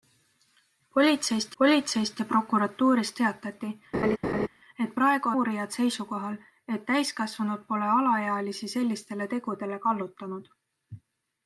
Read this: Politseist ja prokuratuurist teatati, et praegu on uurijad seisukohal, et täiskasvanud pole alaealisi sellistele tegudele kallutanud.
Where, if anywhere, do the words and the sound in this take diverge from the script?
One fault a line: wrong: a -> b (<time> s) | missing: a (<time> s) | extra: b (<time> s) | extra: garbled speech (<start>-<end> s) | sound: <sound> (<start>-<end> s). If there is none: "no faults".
extra: politseist (1.6 s)
sound: laugh (3.9-4.5 s)
missing: on (5.3 s)